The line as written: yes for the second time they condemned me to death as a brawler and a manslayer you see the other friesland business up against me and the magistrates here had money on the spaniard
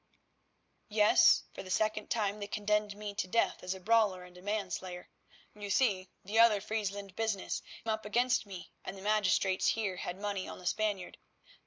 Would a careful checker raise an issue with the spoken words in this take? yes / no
no